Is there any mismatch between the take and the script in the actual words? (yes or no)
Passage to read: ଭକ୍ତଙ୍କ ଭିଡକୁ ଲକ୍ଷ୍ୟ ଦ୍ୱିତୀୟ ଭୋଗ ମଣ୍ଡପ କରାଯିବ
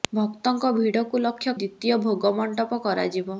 no